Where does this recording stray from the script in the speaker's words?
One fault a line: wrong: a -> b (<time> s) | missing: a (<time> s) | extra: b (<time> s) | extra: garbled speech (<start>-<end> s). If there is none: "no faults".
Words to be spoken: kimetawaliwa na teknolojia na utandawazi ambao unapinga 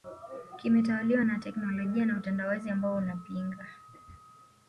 no faults